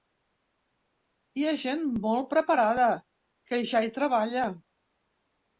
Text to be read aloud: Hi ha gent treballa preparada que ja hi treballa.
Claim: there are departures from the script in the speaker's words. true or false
true